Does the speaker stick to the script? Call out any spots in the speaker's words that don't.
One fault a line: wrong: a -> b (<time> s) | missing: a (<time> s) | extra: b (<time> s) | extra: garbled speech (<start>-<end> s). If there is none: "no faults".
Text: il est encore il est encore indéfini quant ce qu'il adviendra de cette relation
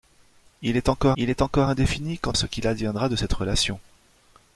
no faults